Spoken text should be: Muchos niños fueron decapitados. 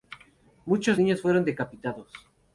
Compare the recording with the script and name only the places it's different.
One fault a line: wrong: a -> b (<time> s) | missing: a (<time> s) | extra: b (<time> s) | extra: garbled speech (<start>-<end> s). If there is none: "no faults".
no faults